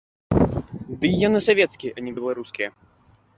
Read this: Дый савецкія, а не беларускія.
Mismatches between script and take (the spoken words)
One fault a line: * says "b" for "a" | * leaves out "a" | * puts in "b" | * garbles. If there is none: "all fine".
* puts in "яны"